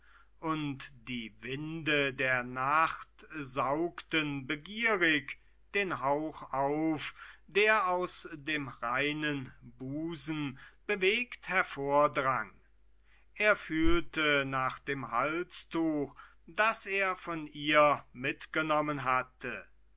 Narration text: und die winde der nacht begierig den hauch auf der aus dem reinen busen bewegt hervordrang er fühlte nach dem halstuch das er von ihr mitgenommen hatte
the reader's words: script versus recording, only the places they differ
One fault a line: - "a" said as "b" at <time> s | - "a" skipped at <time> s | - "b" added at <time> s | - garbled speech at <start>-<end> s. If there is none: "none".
- "saugten" added at 3.4 s